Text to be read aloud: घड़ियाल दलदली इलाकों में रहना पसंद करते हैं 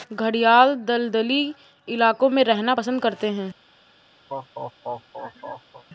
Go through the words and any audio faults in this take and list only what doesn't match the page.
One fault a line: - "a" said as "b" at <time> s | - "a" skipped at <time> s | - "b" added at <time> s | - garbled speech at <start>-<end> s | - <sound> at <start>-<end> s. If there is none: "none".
- laugh at 4.3-5.8 s